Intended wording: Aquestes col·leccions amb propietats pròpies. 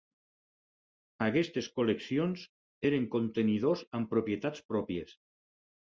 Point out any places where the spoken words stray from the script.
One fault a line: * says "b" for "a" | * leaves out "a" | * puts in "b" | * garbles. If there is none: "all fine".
* puts in "eren contenidors"